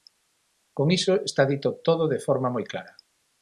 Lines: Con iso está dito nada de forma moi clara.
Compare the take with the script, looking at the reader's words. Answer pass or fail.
fail